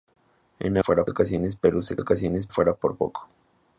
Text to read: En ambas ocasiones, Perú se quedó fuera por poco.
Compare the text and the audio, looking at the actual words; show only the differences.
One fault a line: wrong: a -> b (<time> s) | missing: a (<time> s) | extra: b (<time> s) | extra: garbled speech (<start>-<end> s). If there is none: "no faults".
wrong: ambas -> fuera (0.8 s)
wrong: quedó -> ocasiones (2.0 s)